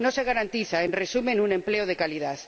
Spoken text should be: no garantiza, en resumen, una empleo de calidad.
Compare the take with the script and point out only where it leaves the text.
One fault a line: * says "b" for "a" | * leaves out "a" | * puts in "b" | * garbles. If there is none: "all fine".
* puts in "se"
* says "un" for "una"